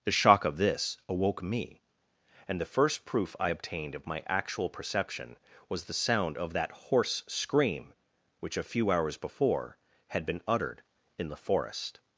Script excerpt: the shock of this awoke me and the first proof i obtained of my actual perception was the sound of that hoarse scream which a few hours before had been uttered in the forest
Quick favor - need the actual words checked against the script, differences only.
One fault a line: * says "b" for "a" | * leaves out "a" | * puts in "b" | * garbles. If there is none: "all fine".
all fine